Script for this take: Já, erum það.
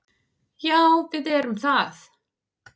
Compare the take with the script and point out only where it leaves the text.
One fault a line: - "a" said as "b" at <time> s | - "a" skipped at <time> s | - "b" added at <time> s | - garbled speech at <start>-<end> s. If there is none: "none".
- "við" added at 1.1 s